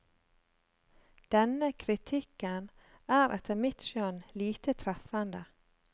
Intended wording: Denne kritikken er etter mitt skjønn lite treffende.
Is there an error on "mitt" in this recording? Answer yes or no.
no